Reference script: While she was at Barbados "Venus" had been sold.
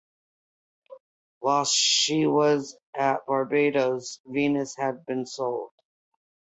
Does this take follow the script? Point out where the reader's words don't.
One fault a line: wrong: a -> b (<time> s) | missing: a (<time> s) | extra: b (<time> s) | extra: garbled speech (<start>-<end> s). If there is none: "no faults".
no faults